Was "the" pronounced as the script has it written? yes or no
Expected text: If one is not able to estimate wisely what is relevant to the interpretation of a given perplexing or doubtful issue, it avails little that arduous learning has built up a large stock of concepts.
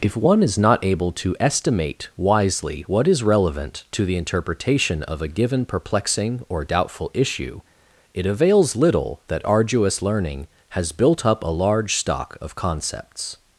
yes